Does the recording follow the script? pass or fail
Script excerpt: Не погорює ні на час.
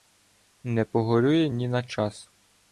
pass